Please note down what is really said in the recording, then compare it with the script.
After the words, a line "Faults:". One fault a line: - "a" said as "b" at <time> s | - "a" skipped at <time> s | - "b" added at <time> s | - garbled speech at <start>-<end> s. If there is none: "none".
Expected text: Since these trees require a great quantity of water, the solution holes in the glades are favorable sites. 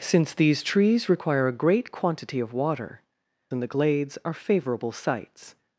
Since these trees require a great quantity of water, in the glades are favorable sites.
Faults:
- "the solution holes" skipped at 3.0 s